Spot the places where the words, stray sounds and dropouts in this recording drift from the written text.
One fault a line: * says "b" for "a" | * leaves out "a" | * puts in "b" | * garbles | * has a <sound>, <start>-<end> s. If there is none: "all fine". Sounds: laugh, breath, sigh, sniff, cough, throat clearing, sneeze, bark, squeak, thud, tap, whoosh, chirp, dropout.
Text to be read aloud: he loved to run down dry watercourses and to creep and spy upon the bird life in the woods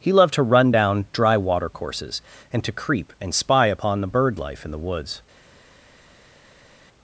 all fine